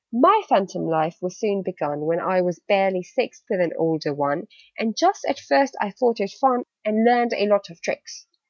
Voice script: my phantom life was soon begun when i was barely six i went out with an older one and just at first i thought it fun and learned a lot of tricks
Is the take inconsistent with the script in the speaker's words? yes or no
yes